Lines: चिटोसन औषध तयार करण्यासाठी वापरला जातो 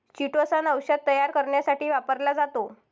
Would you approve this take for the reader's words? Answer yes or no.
yes